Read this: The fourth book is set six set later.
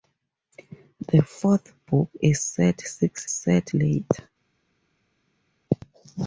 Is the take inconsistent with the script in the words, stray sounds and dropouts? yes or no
no